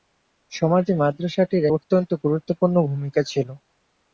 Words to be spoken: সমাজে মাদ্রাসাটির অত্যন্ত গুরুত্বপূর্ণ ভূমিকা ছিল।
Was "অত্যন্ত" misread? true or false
false